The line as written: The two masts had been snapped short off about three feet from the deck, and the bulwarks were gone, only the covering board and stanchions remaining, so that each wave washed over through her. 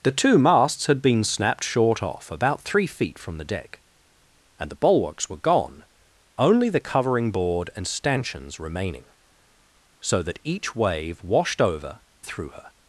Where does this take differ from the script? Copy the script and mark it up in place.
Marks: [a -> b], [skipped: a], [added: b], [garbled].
The two masts had been snapped short off about three feet from the deck, and the bulwarks were gone, only the covering board and stanchions remaining, so that each wave washed over through her.